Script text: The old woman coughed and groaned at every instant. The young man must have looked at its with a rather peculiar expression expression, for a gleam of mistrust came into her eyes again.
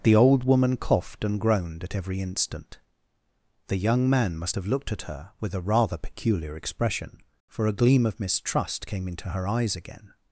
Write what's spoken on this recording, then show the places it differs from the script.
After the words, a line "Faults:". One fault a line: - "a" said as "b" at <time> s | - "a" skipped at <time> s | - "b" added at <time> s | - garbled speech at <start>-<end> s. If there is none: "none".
The old woman coughed and groaned at every instant. The young man must have looked at her with a rather peculiar expression, for a gleam of mistrust came into her eyes again.
Faults:
- "its" said as "her" at 5.0 s
- "expression" skipped at 7.2 s